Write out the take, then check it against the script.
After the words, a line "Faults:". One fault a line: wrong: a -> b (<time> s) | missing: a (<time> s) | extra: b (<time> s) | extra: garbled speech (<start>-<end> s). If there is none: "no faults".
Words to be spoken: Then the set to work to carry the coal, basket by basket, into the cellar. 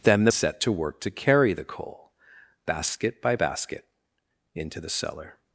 Then the set to work to carry the coal, basket by basket, into the cellar.
Faults:
no faults